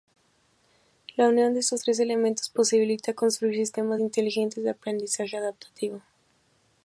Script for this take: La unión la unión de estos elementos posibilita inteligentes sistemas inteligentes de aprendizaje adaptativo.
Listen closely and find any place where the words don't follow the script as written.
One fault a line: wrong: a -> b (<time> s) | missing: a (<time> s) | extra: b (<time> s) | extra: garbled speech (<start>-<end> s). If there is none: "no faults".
missing: la unión (1.5 s)
extra: tres (1.8 s)
wrong: inteligentes -> construir (3.1 s)